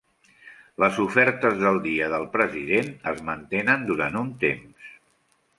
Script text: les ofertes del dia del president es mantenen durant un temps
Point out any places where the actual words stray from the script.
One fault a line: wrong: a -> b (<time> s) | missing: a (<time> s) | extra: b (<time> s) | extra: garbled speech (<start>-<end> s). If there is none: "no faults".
no faults